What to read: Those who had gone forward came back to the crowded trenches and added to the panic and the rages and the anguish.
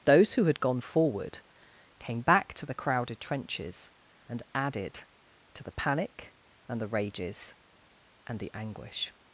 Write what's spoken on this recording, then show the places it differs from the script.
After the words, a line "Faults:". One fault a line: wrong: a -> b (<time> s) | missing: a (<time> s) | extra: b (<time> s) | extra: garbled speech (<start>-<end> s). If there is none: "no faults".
Those who had gone forward came back to the crowded trenches and added to the panic and the rages and the anguish.
Faults:
no faults